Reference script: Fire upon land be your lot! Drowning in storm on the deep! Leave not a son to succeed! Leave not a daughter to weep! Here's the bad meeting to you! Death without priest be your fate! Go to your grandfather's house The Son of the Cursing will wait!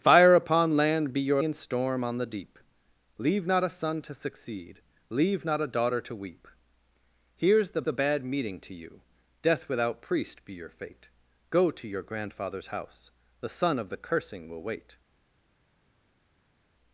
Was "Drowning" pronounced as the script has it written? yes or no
no